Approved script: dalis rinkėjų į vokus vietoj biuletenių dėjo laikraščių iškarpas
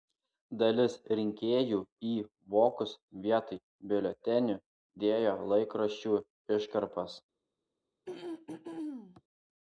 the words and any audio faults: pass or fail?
fail